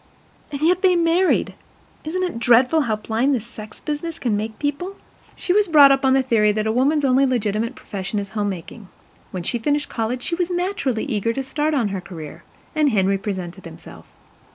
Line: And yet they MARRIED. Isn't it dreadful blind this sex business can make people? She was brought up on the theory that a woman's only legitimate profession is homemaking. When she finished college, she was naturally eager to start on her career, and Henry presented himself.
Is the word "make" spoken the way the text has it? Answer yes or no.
yes